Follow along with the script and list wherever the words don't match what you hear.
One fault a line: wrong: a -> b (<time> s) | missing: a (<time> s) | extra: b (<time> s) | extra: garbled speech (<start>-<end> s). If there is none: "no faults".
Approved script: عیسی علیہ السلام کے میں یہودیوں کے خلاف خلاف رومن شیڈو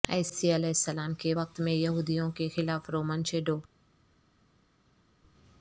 extra: وقت (1.3 s)
missing: خلاف (2.9 s)